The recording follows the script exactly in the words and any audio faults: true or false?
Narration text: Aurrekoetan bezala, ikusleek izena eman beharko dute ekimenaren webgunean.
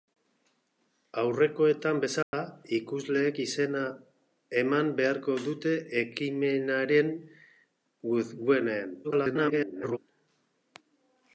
false